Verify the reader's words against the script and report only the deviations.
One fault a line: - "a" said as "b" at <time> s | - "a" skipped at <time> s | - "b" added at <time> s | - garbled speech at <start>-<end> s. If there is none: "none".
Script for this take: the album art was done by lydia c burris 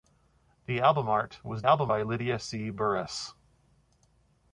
- "done" said as "album" at 1.6 s